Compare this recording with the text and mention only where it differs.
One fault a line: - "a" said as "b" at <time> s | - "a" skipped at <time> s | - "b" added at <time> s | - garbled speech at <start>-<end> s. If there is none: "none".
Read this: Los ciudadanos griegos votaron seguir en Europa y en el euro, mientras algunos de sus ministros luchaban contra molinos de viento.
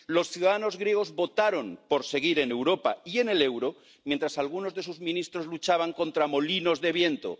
- "por" added at 1.9 s